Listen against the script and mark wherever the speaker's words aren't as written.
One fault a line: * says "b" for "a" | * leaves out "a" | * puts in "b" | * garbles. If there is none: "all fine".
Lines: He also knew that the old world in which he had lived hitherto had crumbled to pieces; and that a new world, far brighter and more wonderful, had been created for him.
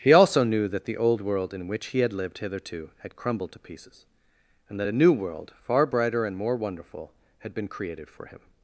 all fine